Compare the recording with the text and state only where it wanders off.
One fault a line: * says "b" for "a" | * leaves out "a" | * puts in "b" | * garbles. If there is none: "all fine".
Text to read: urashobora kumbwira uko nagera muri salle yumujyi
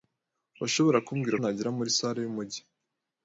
* leaves out "uko"